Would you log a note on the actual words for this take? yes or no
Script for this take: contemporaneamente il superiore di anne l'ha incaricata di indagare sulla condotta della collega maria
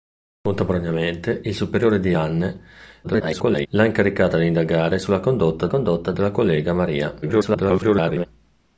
yes